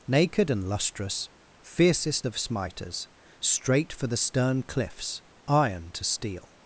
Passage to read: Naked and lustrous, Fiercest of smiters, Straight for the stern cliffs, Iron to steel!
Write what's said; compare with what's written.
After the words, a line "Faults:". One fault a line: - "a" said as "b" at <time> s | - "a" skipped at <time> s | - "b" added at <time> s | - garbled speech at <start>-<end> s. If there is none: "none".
Naked and lustrous, Fiercest of smiters, Straight for the stern cliffs, Iron to steel!
Faults:
none